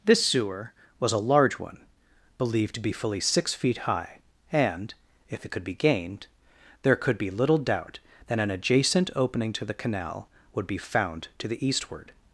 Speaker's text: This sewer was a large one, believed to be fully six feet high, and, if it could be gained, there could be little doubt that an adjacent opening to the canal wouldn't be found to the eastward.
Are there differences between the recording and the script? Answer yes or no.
yes